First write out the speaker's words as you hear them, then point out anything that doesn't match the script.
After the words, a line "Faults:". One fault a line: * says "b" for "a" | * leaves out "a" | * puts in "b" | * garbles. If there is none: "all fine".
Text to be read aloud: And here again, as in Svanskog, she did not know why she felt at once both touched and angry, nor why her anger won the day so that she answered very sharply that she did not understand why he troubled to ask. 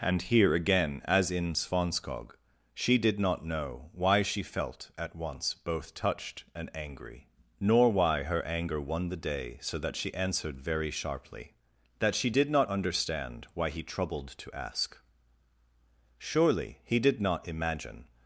And here again, as in Svanskog, she did not know why she felt at once both touched and angry, nor why her anger won the day so that she answered very sharply that she did not understand why he troubled to ask. Surely he did not imagine
Faults:
* puts in "Surely he did not imagine"